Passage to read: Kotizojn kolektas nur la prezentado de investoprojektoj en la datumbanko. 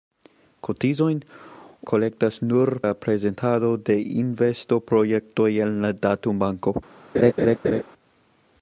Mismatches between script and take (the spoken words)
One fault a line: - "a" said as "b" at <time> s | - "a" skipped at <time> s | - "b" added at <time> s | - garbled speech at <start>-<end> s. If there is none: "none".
none